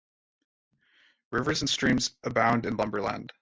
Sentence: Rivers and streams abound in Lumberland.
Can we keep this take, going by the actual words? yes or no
yes